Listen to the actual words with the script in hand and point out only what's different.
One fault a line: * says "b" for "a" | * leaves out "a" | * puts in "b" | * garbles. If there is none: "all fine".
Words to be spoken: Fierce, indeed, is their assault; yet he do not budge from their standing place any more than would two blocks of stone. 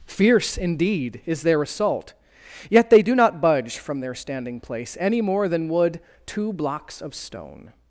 * says "they" for "he"